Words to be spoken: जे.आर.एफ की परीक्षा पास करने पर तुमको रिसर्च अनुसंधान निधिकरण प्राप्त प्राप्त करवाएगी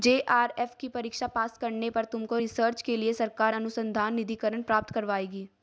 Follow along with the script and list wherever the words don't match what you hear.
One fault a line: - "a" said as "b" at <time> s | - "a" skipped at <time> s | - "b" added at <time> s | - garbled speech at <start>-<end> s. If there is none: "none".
- "के लिए सरकार" added at 2.8 s
- "प्राप्त" skipped at 4.9 s